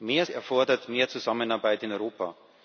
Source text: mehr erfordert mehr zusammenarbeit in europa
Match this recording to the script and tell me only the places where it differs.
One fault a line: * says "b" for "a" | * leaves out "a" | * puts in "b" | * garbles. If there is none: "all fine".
all fine